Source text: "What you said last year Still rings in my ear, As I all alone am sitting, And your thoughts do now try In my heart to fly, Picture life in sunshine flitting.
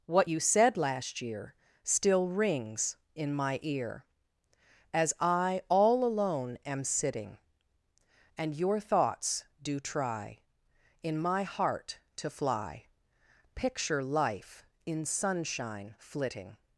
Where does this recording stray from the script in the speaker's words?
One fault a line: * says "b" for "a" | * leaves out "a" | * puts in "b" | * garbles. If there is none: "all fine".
* leaves out "now"